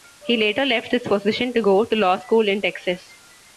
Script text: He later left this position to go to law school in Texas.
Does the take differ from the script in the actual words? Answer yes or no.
no